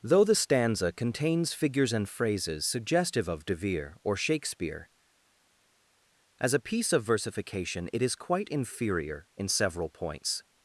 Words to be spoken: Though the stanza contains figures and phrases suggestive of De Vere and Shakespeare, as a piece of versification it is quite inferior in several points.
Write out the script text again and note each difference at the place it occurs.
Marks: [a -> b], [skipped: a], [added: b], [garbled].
Though the stanza contains figures and phrases suggestive of De Vere [and -> or] Shakespeare, as a piece of versification it is quite inferior in several points.